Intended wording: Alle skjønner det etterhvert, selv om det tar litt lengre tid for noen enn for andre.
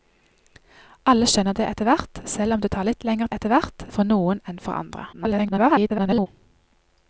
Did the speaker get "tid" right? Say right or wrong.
wrong